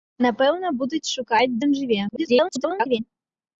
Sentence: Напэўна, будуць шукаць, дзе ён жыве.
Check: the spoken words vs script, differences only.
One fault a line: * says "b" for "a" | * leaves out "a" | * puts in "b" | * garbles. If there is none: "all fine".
* leaves out "дзе"
* garbles